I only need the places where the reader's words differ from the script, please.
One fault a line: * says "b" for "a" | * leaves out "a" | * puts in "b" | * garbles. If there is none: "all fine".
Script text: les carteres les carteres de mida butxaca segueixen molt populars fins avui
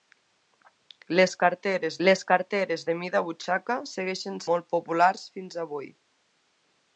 all fine